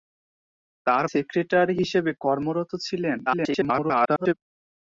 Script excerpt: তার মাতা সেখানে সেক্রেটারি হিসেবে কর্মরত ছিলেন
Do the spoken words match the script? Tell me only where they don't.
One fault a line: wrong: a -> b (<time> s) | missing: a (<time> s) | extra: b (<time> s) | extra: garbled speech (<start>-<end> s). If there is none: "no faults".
missing: মাতা সেখানে (1.1 s)
extra: garbled speech (3.3-4.3 s)